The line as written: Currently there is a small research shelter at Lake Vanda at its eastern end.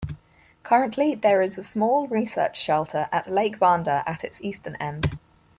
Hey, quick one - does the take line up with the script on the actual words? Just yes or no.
yes